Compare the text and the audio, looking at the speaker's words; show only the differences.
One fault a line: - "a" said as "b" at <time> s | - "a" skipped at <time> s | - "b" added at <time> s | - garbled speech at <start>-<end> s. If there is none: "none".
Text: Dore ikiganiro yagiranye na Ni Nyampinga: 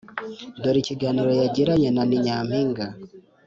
none